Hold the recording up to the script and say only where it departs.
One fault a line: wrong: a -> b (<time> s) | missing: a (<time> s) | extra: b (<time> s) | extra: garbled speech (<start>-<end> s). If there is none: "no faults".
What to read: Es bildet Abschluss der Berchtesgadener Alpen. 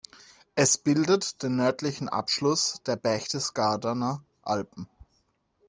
extra: den nördlichen (1.4 s)